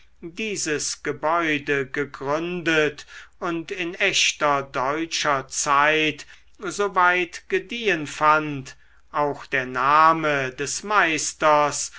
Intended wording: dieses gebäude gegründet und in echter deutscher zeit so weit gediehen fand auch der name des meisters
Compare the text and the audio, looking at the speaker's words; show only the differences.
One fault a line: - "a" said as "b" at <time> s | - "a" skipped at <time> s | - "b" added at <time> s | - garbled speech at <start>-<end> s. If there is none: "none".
none